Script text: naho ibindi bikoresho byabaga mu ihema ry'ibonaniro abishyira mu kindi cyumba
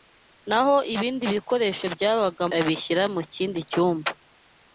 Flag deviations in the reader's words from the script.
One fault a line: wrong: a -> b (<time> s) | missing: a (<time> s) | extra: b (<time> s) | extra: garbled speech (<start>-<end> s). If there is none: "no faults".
missing: mu ihema ry'ibonaniro (2.4 s)